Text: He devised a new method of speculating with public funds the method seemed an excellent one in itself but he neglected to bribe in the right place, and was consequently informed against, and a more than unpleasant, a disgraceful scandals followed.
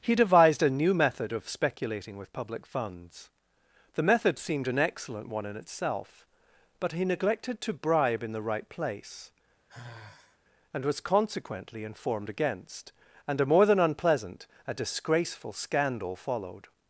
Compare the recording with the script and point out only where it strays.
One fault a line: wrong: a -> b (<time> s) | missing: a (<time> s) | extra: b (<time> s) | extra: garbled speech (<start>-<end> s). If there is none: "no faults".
wrong: scandals -> scandal (15.5 s)